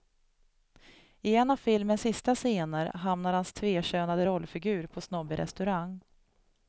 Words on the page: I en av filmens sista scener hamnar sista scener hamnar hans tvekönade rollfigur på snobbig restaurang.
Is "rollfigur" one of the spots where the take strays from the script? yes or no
no